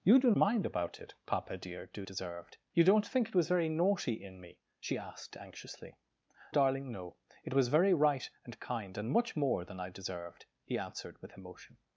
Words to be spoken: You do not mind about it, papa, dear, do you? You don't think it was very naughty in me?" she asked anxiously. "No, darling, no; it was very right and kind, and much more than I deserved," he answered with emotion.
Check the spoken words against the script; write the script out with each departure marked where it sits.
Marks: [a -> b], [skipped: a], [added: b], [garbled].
You do [skipped: not] mind about it, papa, dear, do [you? -> deserved] You don't think it was very naughty in me?" she asked anxiously. [skipped: "No,] darling, no; it was very right and kind, and much more than I deserved," he answered with emotion.